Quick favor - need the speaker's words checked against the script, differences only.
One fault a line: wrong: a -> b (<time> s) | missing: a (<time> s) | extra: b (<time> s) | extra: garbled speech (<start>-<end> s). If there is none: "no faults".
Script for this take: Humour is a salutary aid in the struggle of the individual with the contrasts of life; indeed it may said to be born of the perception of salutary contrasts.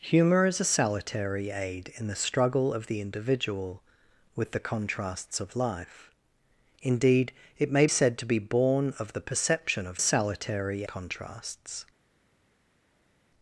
no faults